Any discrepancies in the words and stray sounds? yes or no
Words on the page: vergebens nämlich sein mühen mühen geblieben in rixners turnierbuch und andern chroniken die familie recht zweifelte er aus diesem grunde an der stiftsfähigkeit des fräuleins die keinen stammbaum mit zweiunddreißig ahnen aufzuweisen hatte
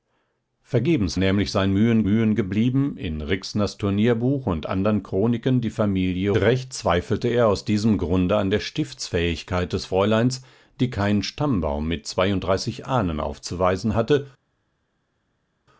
no